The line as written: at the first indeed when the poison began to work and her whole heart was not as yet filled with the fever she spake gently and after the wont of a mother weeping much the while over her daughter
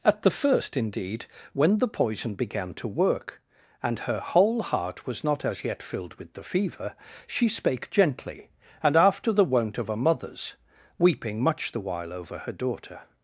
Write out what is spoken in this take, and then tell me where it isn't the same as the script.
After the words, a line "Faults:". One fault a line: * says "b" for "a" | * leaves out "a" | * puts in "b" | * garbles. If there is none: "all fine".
at the first indeed when the poison began to work and her whole heart was not as yet filled with the fever she spake gently and after the wont of a mothers weeping much the while over her daughter
Faults:
* says "mothers" for "mother"